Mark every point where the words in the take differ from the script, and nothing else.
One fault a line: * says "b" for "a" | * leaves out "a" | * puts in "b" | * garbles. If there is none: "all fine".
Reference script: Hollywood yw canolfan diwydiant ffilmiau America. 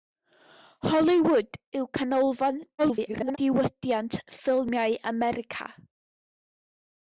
* garbles